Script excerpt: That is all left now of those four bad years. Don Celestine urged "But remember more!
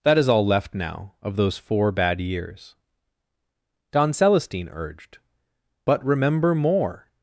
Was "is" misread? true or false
false